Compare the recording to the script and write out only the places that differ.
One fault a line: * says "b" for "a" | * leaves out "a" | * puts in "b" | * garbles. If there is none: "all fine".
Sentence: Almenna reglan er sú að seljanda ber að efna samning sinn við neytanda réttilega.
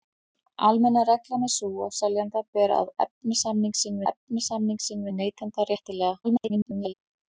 * puts in "efna samning sinn"
* garbles